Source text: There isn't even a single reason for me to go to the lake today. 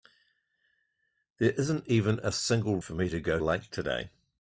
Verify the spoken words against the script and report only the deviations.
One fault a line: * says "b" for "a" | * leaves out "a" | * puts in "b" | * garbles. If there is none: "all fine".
* leaves out "reason"
* leaves out "to the"